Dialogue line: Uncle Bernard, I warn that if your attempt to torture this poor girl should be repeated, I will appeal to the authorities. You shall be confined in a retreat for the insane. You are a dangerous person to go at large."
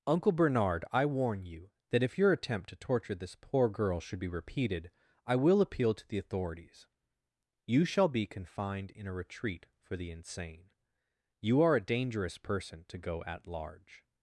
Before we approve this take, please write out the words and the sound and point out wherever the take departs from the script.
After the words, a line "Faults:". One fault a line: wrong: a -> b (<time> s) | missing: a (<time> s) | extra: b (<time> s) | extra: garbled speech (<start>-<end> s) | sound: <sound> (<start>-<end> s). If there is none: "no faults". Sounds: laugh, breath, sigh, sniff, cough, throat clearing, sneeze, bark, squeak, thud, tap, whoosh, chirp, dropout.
Uncle Bernard, I warn you that if your attempt to torture this poor girl should be repeated, I will appeal to the authorities. You shall be confined in a retreat for the insane. You are a dangerous person to go at large."
Faults:
extra: you (1.4 s)